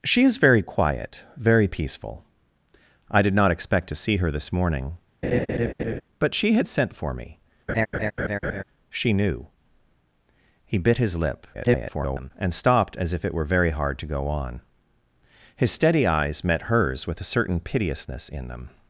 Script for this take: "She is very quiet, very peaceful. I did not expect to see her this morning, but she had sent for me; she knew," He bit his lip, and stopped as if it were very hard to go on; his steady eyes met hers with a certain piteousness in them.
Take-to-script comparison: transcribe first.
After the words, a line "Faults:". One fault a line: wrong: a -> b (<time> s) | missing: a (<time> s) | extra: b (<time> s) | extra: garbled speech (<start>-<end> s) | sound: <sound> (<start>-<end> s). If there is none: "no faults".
"She is very quiet, very peaceful. I did not expect to see her this morning, but she had sent for me; she knew," He bit his lip, [garbled] and stopped as if it were very hard to go on; his steady eyes met hers with a certain piteousness in them.
Faults:
sound: laugh (5.2-6.0 s)
sound: laugh (7.7-8.6 s)
extra: garbled speech (11.5-12.3 s)